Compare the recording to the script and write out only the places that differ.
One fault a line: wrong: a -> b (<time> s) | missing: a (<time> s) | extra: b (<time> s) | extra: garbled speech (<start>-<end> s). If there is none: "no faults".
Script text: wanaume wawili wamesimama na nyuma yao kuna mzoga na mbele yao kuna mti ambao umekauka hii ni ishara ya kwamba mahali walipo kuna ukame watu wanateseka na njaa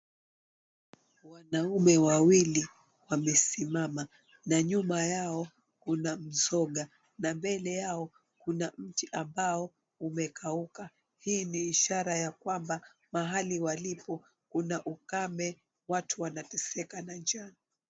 no faults